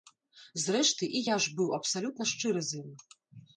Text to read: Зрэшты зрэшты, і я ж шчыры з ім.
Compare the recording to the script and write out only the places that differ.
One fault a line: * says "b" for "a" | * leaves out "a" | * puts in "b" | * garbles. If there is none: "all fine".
* leaves out "зрэшты"
* puts in "быў абсалютна"